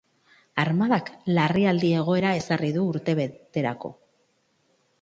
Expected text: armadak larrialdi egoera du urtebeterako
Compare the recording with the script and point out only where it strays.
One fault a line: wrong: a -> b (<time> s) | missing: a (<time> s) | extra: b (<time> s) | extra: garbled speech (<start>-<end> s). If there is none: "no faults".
extra: ezarri (2.4 s)